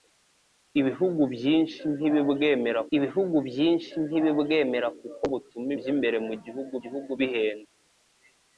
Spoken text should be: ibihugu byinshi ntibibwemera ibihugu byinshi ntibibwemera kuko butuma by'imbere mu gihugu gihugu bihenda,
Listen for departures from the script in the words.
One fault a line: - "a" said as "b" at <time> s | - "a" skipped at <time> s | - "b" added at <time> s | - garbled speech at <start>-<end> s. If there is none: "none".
none